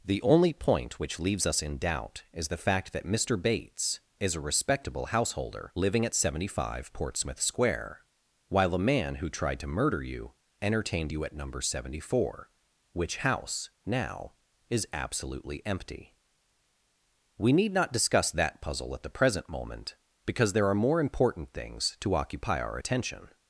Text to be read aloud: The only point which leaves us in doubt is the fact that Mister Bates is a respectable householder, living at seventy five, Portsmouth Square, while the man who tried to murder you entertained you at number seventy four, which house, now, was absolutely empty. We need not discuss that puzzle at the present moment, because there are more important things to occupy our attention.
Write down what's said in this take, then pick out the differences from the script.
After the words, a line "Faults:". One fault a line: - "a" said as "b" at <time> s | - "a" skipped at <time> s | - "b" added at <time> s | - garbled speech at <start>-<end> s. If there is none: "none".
The only point which leaves us in doubt is the fact that Mister Bates is a respectable householder, living at seventy five, Portsmouth Square, while the man who tried to murder you entertained you at number seventy four, which house, now, is absolutely empty. We need not discuss that puzzle at the present moment, because there are more important things to occupy our attention.
Faults:
- "was" said as "is" at 14.7 s